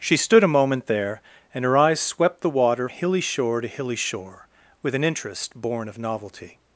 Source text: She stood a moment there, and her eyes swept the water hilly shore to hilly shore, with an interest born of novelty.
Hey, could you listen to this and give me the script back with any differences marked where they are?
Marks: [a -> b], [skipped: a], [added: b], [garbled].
She stood a moment there, and her eyes swept the water hilly shore to hilly shore, with an interest born of novelty.